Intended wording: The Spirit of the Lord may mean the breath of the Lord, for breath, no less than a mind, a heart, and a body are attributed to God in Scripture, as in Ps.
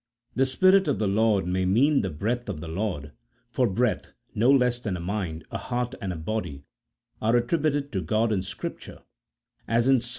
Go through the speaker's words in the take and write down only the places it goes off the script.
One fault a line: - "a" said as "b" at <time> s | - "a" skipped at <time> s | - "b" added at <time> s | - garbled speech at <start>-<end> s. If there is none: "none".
none